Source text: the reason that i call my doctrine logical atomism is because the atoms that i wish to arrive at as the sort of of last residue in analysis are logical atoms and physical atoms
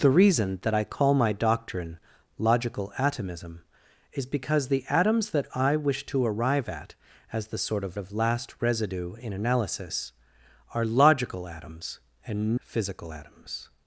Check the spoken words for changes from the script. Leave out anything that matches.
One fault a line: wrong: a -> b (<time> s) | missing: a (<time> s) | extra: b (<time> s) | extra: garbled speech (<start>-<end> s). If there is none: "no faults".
no faults